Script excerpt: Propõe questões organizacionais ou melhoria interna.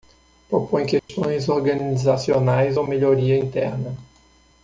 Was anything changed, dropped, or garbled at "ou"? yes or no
no